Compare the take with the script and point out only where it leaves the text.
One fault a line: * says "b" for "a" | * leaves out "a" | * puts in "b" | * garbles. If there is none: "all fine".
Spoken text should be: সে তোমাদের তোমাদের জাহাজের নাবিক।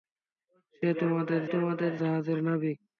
all fine